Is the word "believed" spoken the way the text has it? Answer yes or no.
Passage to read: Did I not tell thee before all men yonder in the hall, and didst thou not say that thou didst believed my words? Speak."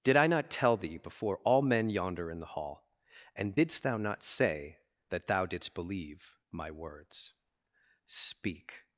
no